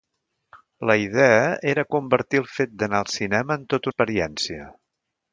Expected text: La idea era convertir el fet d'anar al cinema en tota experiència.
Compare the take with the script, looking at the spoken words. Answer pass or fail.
pass